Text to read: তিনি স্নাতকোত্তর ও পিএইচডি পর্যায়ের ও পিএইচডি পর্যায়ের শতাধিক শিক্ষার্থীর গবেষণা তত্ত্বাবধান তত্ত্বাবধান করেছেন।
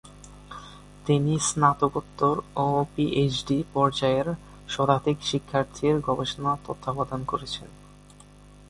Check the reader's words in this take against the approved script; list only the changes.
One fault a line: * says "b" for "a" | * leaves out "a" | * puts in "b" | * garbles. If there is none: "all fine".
* leaves out "ও পিএইচডি পর্যায়ের"
* leaves out "তত্ত্বাবধান"